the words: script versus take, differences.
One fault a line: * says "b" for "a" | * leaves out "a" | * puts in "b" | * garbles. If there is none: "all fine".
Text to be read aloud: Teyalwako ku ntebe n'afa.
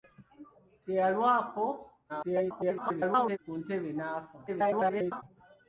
* garbles
* garbles